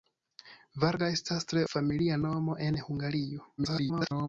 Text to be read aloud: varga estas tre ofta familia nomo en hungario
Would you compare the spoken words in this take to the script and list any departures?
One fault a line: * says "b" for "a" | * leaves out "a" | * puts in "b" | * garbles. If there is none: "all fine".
* leaves out "ofta"
* garbles